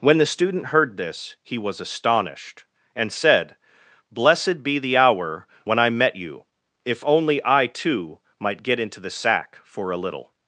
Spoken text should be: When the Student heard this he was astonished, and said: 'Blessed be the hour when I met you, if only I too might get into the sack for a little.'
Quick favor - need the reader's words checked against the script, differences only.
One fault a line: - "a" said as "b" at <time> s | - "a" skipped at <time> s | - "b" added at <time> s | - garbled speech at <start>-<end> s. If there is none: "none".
none